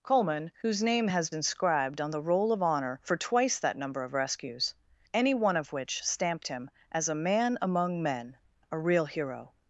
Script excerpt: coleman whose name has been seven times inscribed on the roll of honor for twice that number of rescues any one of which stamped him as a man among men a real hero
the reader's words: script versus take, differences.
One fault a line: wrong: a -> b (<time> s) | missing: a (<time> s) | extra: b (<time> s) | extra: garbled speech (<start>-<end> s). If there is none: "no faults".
missing: been seven times (1.3 s)